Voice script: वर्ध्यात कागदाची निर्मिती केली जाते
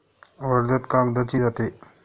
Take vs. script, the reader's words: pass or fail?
fail